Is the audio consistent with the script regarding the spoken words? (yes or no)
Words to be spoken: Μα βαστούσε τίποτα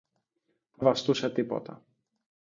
yes